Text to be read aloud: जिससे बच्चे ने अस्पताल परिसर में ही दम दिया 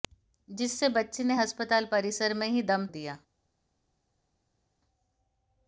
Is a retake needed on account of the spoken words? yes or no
no